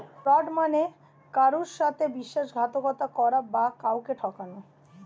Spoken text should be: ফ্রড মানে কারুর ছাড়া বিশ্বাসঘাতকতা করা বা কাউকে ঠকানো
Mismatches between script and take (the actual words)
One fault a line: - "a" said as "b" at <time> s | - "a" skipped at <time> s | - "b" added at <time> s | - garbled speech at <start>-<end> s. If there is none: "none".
- "ছাড়া" said as "সাথে" at 1.8 s